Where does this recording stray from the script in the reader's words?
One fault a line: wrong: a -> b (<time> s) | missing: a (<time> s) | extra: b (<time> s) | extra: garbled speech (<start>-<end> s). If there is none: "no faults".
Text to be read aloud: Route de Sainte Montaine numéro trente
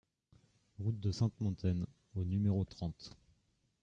extra: au (2.1 s)